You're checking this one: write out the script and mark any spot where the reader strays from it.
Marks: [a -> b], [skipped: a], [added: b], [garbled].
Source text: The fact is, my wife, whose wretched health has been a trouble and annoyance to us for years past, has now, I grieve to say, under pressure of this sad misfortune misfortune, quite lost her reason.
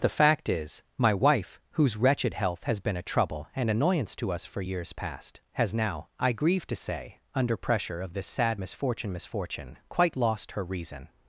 The fact is, my wife, whose wretched health has been a trouble and annoyance to us for years past, has now, I grieve to say, under pressure of this sad misfortune misfortune, quite lost her reason.